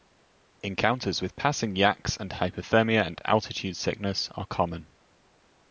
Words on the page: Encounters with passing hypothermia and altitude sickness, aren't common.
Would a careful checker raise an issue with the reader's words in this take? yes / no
yes